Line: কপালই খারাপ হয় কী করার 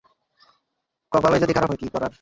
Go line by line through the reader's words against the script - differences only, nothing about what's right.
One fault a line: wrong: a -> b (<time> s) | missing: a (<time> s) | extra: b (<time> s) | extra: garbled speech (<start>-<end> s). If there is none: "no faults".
extra: যদি (1.4 s)